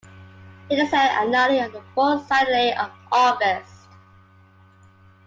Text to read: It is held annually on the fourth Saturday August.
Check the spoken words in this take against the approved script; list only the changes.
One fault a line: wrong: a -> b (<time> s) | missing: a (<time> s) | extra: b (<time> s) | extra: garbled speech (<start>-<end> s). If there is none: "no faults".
extra: of (2.7 s)